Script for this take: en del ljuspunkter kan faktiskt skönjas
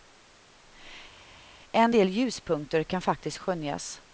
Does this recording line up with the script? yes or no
yes